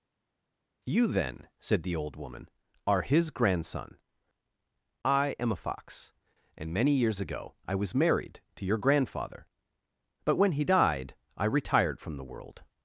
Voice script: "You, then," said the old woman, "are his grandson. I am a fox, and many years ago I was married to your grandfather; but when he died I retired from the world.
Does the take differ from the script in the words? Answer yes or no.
no